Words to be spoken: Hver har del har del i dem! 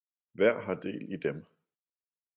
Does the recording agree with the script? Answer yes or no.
no